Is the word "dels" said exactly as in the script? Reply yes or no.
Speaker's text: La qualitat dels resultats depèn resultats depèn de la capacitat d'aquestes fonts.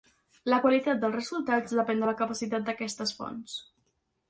yes